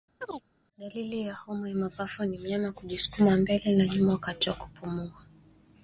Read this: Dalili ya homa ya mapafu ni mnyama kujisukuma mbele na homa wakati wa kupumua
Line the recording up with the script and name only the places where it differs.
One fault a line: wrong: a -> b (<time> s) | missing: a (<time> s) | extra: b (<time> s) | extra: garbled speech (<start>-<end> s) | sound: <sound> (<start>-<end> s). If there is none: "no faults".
sound: chirp (0.2-0.4 s)
wrong: homa -> nyuma (3.9 s)